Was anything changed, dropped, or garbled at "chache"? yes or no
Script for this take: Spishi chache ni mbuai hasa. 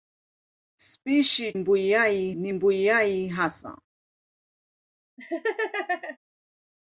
yes